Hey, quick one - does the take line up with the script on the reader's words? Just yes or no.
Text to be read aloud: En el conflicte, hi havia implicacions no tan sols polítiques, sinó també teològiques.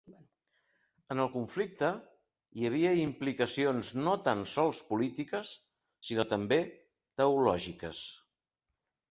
yes